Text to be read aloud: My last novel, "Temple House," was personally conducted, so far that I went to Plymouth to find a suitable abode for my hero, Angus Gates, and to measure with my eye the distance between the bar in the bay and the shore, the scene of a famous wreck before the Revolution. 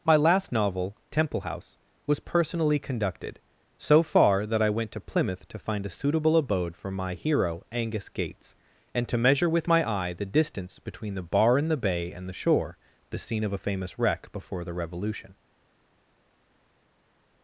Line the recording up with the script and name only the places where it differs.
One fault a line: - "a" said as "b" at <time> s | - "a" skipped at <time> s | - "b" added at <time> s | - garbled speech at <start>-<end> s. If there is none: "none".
none